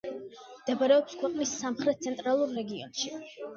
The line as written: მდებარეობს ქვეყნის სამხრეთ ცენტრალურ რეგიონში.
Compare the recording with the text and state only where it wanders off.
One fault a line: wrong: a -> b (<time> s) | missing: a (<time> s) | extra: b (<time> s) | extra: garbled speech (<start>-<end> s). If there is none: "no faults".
no faults